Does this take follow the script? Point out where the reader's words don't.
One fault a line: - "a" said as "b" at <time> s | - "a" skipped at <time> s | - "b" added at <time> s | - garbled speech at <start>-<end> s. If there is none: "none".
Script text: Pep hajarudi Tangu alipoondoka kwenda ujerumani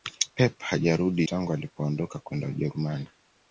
none